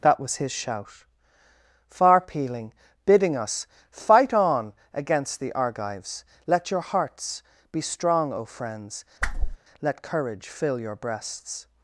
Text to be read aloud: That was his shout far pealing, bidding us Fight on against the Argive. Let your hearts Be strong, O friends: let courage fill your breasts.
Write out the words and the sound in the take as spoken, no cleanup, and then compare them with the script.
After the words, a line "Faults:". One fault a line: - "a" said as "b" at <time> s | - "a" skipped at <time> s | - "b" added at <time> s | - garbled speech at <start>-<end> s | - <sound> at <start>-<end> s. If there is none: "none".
That was his shout far pealing, bidding us Fight on against the Argives. Let your hearts Be strong, O friends: let courage fill your breasts.
Faults:
- "Argive" said as "Argives" at 5.5 s
- whoosh at 9.2-9.6 s